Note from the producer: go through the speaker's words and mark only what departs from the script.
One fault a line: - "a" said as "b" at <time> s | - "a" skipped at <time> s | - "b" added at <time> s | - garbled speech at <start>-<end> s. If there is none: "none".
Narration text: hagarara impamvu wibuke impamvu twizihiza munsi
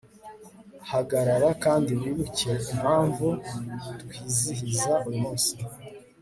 - "impamvu" said as "kandi" at 1.6 s
- "uyu" added at 5.1 s